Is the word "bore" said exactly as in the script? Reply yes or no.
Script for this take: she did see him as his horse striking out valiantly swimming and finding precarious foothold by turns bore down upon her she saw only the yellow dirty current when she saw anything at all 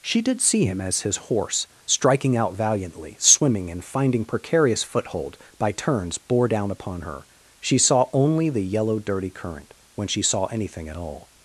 yes